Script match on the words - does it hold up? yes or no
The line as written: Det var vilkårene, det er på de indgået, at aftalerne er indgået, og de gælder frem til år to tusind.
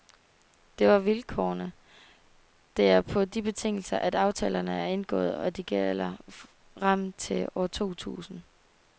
no